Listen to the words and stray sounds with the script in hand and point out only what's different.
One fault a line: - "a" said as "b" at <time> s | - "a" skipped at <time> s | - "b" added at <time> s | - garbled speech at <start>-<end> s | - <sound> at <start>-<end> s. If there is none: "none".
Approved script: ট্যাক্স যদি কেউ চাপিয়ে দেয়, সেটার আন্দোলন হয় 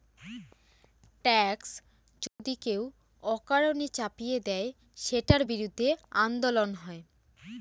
- dropout at 2.3-2.4 s
- "অকারণে" added at 3.2 s
- "বিরুদ্ধে" added at 5.4 s